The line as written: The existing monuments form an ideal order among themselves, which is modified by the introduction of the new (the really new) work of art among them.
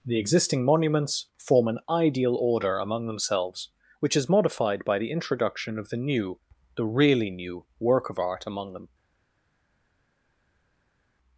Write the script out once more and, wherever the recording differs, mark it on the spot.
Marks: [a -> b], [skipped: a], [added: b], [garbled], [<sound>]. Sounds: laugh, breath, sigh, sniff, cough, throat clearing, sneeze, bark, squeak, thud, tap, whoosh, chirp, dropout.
The existing monuments form an ideal order among themselves, which is modified by the introduction of the new (the really new) work of art among them.